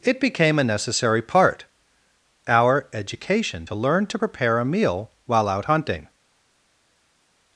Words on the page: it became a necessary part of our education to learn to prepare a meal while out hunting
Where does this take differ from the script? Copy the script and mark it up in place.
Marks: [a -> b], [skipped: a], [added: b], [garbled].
it became a necessary part [skipped: of] our education to learn to prepare a meal while out hunting